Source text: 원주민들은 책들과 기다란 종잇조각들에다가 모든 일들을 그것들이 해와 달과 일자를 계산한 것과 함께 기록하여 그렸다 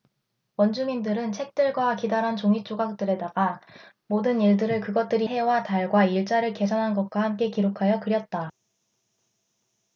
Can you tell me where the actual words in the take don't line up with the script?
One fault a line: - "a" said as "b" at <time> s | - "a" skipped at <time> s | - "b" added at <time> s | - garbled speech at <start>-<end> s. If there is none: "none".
none